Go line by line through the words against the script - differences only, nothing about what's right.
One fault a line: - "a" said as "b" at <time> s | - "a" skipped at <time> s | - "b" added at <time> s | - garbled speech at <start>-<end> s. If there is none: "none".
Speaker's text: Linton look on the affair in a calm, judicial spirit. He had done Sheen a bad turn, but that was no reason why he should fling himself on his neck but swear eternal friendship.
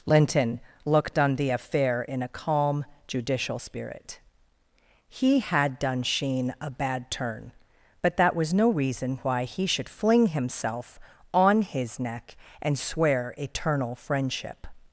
- "look" said as "looked" at 0.8 s
- "but" said as "and" at 12.6 s